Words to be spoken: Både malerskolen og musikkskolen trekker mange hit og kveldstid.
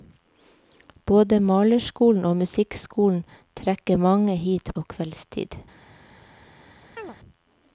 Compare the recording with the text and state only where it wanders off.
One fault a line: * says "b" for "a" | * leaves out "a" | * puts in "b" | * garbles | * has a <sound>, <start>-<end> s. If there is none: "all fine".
* has a chirp, 7.0-7.2 s